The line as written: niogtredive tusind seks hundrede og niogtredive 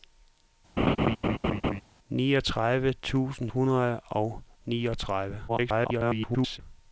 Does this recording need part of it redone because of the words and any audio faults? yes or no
yes